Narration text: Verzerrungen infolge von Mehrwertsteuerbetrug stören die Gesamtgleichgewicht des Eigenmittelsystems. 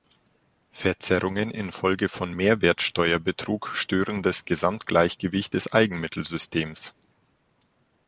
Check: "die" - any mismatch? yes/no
yes